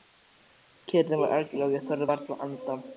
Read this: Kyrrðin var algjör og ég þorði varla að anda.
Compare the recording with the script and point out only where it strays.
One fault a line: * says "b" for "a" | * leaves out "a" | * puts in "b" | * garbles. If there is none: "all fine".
all fine